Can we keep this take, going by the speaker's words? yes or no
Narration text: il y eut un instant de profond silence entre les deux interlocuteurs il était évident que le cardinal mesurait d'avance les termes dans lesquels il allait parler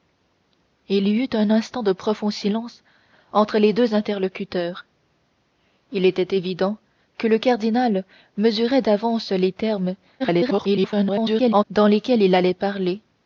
no